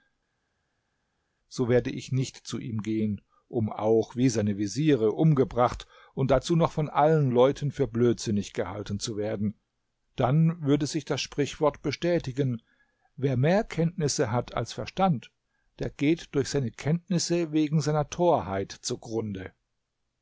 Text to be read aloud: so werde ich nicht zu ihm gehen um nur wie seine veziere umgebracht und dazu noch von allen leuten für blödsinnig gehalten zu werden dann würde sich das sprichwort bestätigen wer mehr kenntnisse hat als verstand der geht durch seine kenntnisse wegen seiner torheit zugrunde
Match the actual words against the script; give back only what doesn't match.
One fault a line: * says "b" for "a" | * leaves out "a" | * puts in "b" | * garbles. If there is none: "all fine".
* says "auch" for "nur"